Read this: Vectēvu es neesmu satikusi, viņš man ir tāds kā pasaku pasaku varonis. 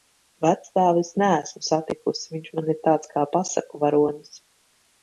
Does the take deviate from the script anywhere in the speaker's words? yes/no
yes